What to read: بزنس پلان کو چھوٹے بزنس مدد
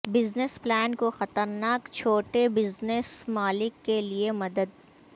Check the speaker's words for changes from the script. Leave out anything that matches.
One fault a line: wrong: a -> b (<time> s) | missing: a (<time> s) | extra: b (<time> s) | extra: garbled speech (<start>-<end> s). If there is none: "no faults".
extra: خطرناک (1.1 s)
extra: مالک کے لئے (3.3 s)